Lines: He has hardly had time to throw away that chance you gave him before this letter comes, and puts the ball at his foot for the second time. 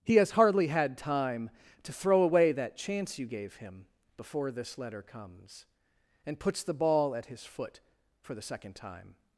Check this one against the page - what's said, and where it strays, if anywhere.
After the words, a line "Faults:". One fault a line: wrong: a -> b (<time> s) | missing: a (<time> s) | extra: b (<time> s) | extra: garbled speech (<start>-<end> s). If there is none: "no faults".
He has hardly had time to throw away that chance you gave him before this letter comes, and puts the ball at his foot for the second time.
Faults:
no faults